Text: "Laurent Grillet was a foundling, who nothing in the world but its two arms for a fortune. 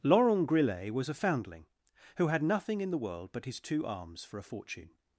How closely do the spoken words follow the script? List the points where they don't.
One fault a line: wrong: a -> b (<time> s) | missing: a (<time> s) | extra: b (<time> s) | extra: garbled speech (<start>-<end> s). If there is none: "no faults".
extra: had (2.3 s)
wrong: its -> his (3.5 s)